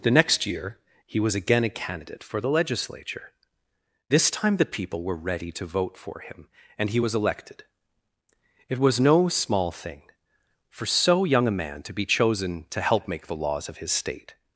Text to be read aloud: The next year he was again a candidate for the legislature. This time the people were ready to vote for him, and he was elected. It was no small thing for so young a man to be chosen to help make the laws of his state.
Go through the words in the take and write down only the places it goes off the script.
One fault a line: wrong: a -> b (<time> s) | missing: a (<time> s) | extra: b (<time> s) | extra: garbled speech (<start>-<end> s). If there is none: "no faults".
no faults